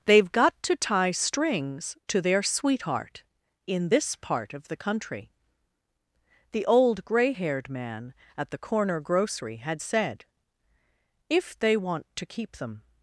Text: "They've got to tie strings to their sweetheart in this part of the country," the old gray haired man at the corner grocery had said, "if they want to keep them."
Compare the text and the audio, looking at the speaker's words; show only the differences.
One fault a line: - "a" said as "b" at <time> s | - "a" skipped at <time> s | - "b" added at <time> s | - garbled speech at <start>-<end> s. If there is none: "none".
none